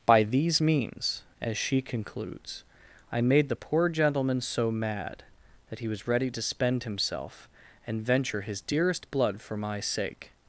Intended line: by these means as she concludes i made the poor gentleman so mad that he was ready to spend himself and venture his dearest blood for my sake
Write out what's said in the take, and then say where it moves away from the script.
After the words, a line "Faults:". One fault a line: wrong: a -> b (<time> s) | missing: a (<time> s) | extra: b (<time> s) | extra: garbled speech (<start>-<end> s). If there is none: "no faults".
by these means as she concludes i made the poor gentleman so mad that he was ready to spend himself and venture his dearest blood for my sake
Faults:
no faults